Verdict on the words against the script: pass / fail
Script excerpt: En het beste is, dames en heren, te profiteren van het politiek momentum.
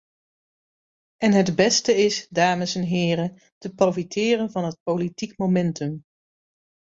pass